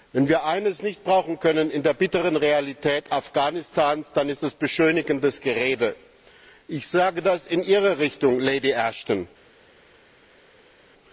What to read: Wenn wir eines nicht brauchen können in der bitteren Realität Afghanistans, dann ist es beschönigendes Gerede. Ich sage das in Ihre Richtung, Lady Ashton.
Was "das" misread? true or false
false